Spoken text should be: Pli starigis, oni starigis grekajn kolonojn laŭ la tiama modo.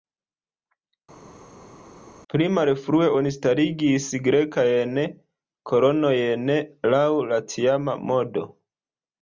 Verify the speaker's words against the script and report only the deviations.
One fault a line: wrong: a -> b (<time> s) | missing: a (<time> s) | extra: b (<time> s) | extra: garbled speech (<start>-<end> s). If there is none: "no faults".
wrong: starigis -> malfrue (2.6 s)